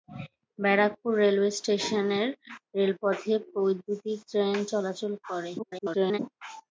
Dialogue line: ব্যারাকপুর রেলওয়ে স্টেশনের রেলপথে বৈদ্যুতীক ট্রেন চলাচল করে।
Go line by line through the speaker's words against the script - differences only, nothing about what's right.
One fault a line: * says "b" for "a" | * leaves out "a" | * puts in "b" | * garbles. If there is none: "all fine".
* garbles